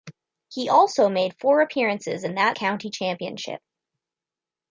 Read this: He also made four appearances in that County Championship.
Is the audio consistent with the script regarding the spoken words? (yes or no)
yes